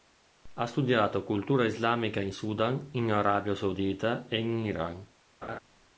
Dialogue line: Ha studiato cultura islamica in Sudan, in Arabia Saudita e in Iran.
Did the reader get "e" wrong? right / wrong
right